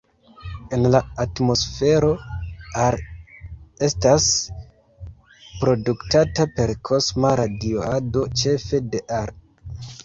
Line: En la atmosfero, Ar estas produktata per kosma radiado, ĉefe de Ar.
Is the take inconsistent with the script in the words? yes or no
no